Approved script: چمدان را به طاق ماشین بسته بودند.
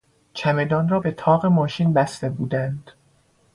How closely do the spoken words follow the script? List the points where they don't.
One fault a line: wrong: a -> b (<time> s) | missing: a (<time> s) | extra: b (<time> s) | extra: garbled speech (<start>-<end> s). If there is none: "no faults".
no faults